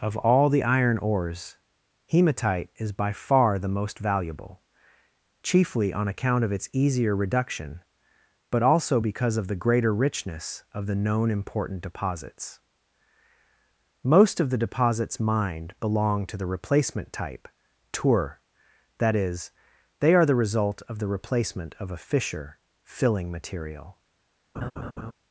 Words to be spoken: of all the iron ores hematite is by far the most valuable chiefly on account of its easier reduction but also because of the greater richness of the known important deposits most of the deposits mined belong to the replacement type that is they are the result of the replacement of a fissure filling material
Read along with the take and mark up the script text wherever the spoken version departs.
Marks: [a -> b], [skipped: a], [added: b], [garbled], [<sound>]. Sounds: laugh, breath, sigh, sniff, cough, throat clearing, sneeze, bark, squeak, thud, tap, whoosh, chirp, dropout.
of all the iron ores hematite is by far the most valuable chiefly on account of its easier reduction but also because of the greater richness of the known important deposits most of the deposits mined belong to the replacement type [added: tour] that is they are the result of the replacement of a fissure filling material [laugh]